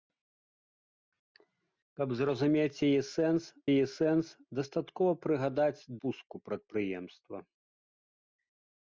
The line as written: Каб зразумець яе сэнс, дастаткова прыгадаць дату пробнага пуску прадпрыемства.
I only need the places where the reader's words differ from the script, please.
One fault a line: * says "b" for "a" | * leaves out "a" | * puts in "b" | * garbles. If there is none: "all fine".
* puts in "яе сэнс"
* leaves out "дату пробнага"